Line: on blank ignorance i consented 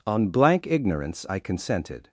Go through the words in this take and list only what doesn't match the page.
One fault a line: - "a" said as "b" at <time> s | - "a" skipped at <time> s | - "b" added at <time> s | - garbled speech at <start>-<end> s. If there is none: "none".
none